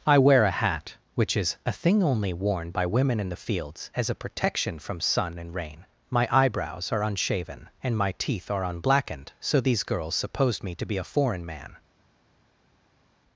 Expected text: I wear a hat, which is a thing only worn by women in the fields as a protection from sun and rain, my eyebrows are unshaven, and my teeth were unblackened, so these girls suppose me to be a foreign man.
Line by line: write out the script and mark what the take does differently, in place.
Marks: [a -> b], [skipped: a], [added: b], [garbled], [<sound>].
I wear a hat, which is a thing only worn by women in the fields as a protection from sun and rain, my eyebrows are unshaven, and my teeth [were -> are] unblackened, so these girls [suppose -> supposed] me to be a foreign man.